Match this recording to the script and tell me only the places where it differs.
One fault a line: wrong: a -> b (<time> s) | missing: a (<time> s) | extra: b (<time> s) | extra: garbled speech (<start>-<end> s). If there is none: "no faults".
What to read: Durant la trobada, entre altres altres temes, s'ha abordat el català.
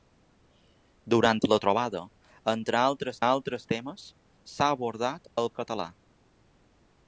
no faults